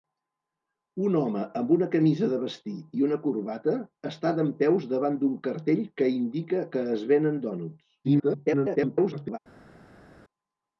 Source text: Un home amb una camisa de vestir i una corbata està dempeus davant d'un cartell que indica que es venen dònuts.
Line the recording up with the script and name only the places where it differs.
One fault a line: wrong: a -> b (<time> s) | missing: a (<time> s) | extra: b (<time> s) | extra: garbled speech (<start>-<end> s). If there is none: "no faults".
extra: garbled speech (8.0-9.4 s)